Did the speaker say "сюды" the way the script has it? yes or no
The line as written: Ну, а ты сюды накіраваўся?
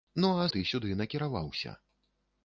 yes